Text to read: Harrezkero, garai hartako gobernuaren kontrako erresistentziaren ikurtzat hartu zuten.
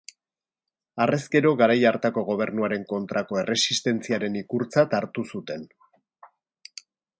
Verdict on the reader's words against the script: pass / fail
pass